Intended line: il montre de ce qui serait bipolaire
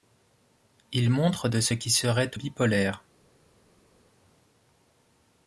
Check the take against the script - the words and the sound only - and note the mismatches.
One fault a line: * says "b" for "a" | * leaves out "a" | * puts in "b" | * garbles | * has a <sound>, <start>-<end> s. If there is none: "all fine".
all fine